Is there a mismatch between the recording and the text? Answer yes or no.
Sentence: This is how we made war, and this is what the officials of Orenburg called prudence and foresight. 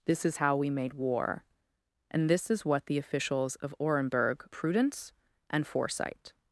yes